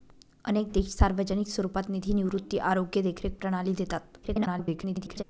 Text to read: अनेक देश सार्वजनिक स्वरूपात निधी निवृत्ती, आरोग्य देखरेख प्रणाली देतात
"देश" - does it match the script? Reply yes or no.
yes